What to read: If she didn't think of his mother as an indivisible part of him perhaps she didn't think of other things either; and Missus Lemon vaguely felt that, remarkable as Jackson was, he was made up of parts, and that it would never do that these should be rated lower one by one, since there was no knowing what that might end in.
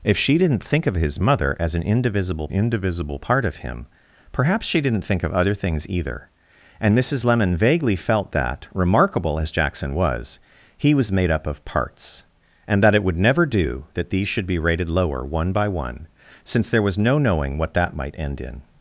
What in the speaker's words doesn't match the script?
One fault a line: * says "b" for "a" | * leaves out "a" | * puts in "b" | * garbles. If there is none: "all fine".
* puts in "indivisible"